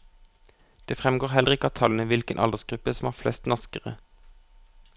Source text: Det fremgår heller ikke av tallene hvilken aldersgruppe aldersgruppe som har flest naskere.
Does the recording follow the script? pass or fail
fail